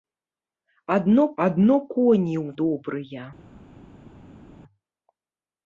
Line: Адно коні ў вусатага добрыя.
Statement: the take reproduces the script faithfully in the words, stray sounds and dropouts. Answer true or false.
false